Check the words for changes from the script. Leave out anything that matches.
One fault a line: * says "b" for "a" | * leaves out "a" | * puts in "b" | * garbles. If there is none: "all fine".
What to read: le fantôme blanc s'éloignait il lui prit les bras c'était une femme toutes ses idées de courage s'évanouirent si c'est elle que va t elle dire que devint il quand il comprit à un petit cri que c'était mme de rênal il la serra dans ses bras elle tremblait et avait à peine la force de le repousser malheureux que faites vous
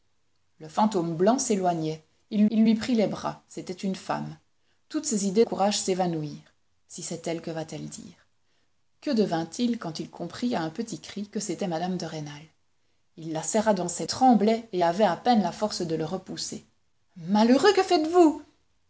* puts in "il"
* leaves out "de"
* leaves out "bras elle"